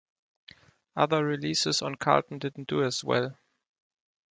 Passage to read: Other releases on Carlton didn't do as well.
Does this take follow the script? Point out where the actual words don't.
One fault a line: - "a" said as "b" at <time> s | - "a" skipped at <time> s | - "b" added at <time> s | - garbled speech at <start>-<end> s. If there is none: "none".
none